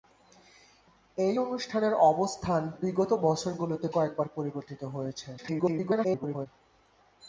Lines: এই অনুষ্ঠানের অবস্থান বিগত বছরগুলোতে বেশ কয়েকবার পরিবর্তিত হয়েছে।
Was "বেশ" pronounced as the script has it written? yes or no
no